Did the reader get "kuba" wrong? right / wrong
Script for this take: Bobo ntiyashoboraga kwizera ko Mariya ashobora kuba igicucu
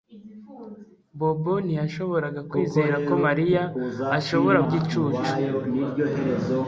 wrong